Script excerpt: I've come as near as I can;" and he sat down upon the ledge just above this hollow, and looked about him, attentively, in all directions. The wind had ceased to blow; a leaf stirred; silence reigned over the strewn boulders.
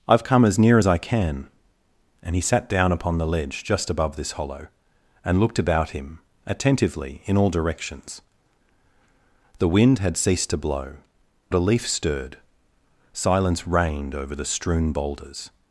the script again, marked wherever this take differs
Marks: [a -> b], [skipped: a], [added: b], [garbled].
I've come as near as I can;" and he sat down upon the ledge just above this hollow, and looked about him, attentively, in all directions. The wind had ceased to blow; a leaf stirred; silence reigned over the strewn boulders.